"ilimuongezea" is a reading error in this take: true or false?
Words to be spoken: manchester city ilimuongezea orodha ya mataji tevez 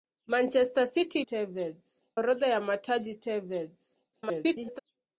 true